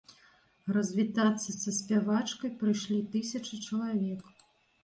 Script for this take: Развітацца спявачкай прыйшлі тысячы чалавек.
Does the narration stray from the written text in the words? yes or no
yes